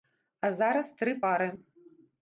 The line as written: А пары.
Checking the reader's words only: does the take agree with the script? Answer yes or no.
no